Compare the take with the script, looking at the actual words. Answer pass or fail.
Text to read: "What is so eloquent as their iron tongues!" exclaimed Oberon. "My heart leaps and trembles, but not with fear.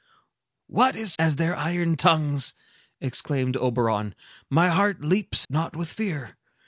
fail